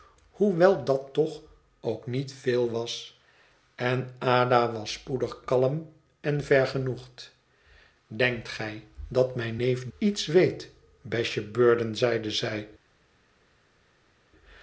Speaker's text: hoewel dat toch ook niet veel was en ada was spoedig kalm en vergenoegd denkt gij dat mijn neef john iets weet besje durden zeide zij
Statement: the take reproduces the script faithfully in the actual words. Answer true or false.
false